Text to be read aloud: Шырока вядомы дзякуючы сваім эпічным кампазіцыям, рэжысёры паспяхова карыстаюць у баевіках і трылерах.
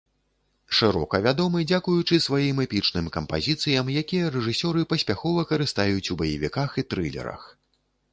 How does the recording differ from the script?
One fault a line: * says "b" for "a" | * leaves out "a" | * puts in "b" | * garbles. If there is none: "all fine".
* puts in "якія"